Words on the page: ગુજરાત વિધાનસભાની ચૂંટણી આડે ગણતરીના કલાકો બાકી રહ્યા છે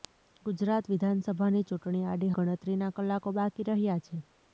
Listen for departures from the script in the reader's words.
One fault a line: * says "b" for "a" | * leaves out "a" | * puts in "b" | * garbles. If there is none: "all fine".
all fine